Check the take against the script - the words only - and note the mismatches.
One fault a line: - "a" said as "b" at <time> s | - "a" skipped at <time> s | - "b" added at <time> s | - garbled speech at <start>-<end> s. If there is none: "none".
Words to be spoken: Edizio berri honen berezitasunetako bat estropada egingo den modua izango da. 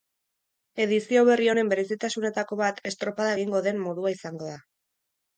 none